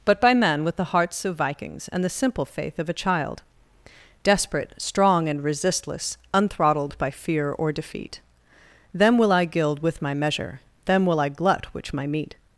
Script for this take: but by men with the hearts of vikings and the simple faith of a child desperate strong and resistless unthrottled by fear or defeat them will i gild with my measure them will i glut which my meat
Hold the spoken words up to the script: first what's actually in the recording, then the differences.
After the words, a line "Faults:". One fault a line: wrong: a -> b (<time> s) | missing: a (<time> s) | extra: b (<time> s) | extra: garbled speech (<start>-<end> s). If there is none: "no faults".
but by men with the hearts of vikings and the simple faith of a child desperate strong and resistless unthrottled by fear or defeat them will i gild with my measure them will i glut which my meat
Faults:
no faults